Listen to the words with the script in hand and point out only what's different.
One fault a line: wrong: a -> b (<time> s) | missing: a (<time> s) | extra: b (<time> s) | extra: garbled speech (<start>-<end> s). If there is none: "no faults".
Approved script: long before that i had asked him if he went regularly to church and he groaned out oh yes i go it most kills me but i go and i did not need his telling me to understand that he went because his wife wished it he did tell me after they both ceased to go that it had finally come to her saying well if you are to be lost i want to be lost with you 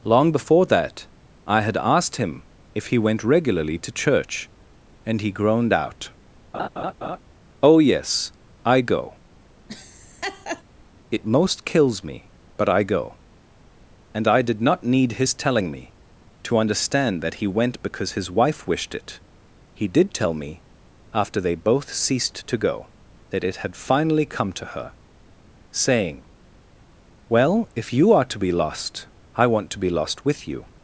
no faults